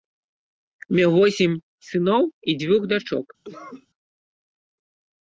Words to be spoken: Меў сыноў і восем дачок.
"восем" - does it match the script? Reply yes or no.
no